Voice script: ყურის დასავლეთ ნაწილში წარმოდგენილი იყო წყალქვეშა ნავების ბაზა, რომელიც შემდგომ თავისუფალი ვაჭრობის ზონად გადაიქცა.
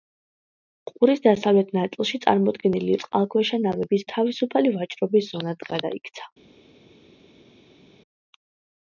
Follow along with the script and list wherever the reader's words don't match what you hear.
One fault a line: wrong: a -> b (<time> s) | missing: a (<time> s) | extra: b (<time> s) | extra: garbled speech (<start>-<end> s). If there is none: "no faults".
missing: იყო (2.9 s)
missing: ბაზა რომელიც შემდგომ (4.0 s)